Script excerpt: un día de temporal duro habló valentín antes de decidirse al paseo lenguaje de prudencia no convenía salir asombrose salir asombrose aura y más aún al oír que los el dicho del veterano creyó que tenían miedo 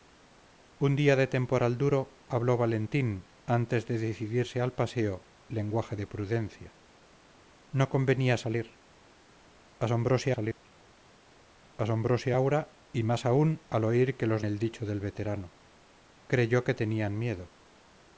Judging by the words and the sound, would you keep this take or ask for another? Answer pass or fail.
fail